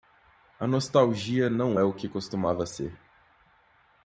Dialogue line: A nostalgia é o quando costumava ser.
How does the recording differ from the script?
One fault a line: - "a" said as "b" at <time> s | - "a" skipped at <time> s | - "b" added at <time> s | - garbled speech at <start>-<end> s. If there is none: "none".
- "não" added at 1.5 s
- "quando" said as "que" at 1.9 s